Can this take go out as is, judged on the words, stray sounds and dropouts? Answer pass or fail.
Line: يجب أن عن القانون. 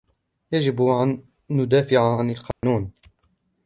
fail